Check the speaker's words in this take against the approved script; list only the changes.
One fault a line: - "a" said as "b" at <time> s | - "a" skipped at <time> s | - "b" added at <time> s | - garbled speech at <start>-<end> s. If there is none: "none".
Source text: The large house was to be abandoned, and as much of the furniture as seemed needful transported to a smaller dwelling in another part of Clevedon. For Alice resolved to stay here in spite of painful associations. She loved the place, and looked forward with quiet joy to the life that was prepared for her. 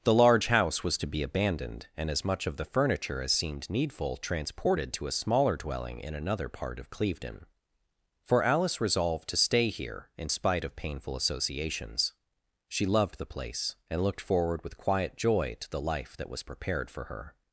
none